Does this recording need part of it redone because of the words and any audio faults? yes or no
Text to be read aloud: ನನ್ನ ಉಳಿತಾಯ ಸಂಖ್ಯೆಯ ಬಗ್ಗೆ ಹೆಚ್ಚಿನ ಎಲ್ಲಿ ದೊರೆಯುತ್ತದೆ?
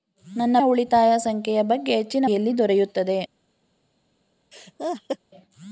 yes